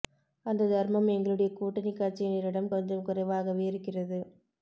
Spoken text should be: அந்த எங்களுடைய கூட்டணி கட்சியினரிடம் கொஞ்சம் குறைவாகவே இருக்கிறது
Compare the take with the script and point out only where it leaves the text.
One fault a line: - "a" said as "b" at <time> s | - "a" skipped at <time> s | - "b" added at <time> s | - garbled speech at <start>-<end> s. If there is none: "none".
- "தர்மம்" added at 0.7 s